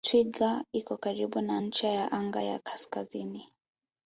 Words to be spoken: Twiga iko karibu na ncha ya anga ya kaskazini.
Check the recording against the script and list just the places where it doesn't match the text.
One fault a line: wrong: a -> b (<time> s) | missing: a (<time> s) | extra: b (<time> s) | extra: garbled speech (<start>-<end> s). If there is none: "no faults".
no faults